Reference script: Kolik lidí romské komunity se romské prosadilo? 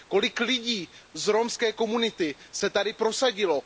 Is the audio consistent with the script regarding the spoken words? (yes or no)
no